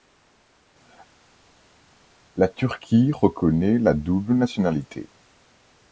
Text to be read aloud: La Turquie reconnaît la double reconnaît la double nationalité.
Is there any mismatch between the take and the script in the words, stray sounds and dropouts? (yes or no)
yes